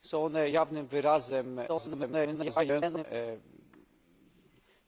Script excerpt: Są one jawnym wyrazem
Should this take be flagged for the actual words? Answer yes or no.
yes